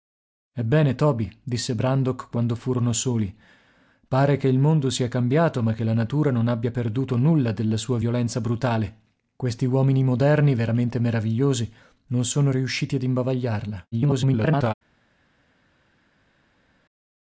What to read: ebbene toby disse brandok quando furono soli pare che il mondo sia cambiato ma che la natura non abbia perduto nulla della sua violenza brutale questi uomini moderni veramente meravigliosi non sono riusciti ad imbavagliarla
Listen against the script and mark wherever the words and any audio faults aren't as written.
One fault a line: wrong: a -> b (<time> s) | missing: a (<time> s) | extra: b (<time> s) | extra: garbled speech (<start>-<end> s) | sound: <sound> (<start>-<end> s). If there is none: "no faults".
extra: garbled speech (13.9-14.7 s)